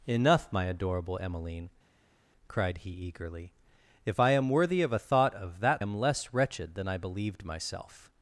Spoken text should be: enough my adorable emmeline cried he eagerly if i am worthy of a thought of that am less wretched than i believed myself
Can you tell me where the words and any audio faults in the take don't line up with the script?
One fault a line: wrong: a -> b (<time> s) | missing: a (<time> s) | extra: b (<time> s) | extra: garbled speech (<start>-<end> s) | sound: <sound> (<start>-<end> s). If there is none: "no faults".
no faults